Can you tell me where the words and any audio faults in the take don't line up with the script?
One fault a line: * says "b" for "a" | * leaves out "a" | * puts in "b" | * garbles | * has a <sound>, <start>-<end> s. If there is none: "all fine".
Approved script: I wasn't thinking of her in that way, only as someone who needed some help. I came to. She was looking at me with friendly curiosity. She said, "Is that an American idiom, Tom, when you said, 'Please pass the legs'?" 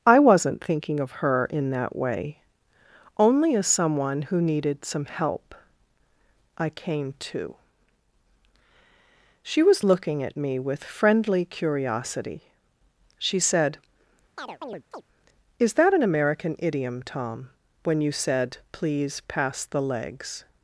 * has a chirp, 14.4-15.0 s